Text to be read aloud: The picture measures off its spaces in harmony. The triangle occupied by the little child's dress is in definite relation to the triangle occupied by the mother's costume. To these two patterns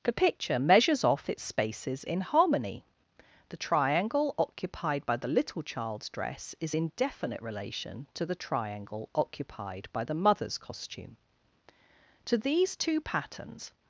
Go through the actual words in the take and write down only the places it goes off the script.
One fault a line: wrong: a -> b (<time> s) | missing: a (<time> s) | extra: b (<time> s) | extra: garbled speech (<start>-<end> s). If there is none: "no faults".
no faults